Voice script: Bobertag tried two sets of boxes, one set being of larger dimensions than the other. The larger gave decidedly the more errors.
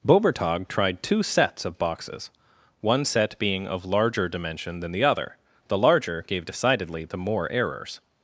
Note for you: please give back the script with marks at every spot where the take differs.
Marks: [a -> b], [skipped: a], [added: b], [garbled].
Bobertag tried two sets of boxes, one set being of larger [dimensions -> dimension] than the other. The larger gave decidedly the more errors.